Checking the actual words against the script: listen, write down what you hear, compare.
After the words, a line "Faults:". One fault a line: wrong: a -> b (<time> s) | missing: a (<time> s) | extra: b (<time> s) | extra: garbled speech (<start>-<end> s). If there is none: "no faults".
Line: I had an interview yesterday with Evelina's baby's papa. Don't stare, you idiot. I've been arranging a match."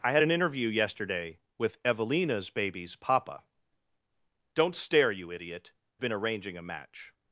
I had an interview yesterday with Evelina's baby's papa. Don't stare, you idiot. Been arranging a match."
Faults:
missing: I've (5.7 s)